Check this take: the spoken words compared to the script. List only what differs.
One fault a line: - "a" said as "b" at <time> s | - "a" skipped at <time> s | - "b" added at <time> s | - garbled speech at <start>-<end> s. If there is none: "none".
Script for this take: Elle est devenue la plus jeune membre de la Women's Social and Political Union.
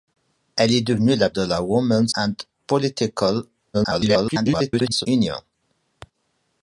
- "plus jeune membre" skipped at 1.3 s
- "Social" skipped at 2.1 s
- garbled speech at 3.7-5.1 s